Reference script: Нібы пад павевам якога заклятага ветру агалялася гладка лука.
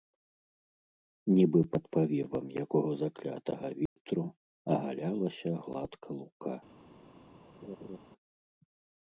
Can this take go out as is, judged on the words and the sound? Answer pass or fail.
fail